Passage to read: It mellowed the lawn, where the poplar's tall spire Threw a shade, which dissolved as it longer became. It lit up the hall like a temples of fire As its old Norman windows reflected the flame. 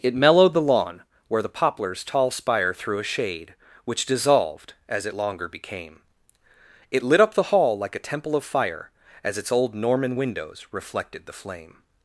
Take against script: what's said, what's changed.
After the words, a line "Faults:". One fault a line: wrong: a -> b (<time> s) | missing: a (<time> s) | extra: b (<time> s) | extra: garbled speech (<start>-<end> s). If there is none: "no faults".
It mellowed the lawn, where the poplar's tall spire Threw a shade, which dissolved as it longer became. It lit up the hall like a temple of fire As its old Norman windows reflected the flame.
Faults:
wrong: temples -> temple (8.0 s)